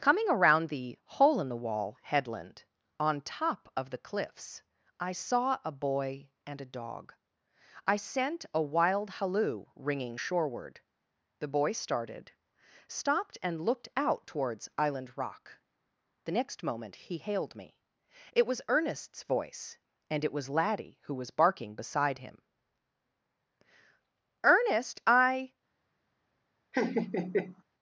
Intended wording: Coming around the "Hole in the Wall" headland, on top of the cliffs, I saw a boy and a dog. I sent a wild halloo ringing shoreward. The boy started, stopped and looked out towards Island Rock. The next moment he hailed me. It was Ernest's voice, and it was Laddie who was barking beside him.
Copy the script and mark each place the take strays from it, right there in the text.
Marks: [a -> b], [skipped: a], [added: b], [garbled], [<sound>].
Coming around the "Hole in the Wall" headland, on top of the cliffs, I saw a boy and a dog. I sent a wild halloo ringing shoreward. The boy started, stopped and looked out towards Island Rock. The next moment he hailed me. It was Ernest's voice, and it was Laddie who was barking beside him. [added: Ernest I] [laugh]